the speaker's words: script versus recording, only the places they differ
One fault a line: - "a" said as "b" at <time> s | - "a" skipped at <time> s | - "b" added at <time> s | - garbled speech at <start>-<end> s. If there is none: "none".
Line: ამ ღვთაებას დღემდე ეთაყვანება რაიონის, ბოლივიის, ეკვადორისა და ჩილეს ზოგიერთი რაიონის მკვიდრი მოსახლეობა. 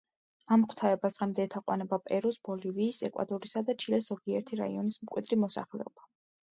- "რაიონის" said as "პერუს" at 2.1 s